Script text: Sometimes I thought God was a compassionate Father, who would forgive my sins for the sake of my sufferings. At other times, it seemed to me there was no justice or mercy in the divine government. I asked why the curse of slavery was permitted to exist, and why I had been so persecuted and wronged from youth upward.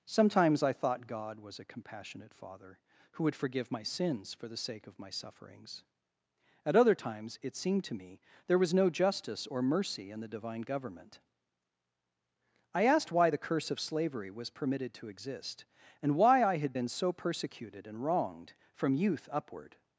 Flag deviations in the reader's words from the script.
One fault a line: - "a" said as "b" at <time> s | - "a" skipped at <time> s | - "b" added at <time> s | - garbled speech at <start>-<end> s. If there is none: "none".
none